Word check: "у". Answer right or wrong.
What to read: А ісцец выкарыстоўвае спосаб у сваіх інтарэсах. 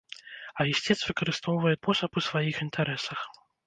right